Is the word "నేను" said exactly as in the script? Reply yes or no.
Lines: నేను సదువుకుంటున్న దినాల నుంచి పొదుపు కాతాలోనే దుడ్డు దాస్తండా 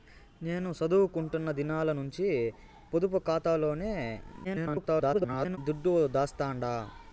yes